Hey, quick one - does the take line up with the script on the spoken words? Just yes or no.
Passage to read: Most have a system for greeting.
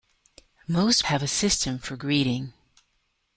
yes